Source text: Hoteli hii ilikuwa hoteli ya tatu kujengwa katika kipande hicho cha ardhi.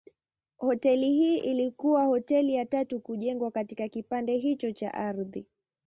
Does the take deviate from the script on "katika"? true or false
false